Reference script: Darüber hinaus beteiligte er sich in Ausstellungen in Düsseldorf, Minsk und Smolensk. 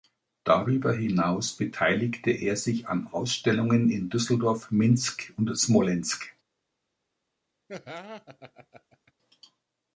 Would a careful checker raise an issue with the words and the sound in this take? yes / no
yes